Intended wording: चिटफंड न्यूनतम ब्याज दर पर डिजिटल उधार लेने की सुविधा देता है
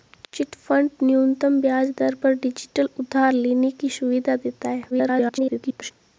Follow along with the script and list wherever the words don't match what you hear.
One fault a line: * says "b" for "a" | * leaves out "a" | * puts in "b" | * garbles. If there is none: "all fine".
* garbles